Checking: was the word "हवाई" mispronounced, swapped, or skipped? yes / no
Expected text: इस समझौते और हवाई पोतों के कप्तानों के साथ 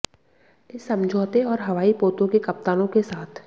no